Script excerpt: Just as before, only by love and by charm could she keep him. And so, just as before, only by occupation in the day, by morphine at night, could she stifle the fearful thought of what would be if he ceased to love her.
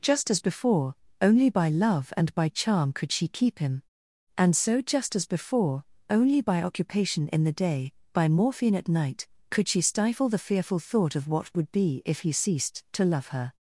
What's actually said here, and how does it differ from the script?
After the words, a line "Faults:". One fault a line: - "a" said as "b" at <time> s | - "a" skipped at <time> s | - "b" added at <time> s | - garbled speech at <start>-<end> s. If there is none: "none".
Just as before, only by love and by charm could she keep him. And so, just as before, only by occupation in the day, by morphine at night, could she stifle the fearful thought of what would be if he ceased to love her.
Faults:
none